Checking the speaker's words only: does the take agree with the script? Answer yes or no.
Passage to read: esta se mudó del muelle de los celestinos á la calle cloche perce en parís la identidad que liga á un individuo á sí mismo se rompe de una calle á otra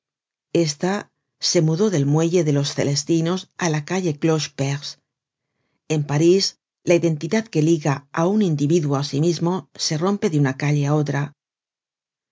yes